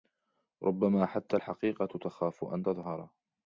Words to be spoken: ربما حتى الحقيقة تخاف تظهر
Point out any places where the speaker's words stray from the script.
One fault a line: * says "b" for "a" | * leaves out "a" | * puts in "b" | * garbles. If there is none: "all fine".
* puts in "أن"